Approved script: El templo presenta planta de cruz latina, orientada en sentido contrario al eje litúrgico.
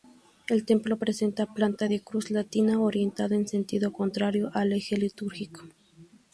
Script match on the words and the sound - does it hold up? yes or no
yes